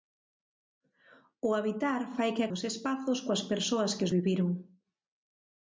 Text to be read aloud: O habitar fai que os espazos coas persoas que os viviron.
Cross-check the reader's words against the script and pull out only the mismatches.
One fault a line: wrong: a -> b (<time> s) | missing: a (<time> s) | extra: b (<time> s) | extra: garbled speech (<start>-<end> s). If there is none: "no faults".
no faults